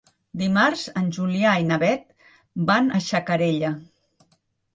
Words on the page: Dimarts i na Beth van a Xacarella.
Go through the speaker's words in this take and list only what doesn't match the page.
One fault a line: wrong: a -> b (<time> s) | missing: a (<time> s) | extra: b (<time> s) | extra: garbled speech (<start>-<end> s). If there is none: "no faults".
extra: en Julià (1.0 s)